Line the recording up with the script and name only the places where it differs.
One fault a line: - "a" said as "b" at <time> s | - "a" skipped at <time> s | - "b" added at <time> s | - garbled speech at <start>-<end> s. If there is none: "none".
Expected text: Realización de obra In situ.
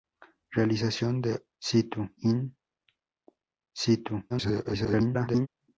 - "obra" said as "situ" at 1.6 s
- garbled speech at 4.3-5.5 s